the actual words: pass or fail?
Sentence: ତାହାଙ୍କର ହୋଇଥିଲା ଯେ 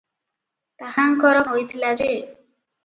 pass